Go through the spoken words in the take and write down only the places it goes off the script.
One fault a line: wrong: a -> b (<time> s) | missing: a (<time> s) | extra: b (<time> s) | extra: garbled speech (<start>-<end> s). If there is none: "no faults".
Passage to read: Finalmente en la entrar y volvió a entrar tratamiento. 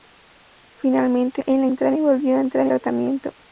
no faults